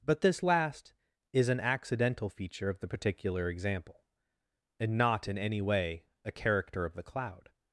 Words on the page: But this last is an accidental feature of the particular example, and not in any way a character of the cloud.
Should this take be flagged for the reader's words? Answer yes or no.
no